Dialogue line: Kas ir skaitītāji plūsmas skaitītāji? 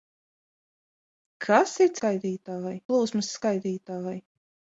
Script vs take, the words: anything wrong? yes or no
no